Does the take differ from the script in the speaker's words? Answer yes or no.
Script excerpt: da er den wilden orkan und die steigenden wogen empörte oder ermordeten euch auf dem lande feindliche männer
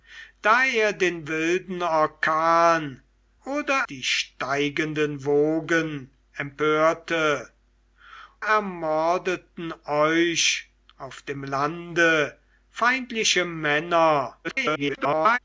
yes